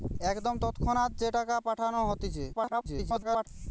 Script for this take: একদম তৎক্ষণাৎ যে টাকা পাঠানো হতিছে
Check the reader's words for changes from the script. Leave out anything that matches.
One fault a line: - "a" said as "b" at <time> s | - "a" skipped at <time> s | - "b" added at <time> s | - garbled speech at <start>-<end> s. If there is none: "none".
- garbled speech at 2.5-3.5 s